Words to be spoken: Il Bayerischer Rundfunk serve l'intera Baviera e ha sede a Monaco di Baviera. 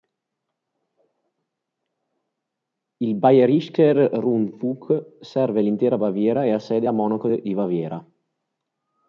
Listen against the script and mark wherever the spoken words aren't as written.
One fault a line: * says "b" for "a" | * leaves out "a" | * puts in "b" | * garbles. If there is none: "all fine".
all fine